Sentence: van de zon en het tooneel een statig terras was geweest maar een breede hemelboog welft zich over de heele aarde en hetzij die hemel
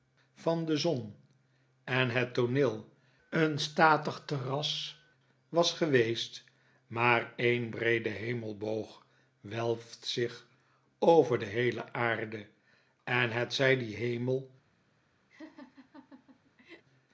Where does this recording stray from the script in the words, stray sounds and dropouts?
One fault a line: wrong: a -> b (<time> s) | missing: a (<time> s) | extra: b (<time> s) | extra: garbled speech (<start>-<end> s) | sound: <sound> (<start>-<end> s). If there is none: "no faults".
sound: laugh (15.3-16.8 s)